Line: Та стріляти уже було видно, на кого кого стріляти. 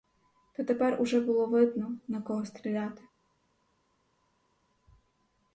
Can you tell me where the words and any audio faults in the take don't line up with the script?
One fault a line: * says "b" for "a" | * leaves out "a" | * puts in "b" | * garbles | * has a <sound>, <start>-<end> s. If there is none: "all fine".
* says "тепер" for "стріляти"
* leaves out "кого"